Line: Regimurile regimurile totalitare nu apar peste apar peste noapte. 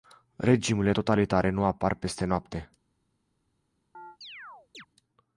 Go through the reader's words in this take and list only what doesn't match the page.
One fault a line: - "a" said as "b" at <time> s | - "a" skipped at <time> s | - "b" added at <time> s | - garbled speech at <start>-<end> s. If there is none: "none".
- "regimurile" skipped at 0.9 s
- "apar peste" skipped at 2.2 s